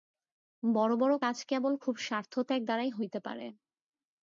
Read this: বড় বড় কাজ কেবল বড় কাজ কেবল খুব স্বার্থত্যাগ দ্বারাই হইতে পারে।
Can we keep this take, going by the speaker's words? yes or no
no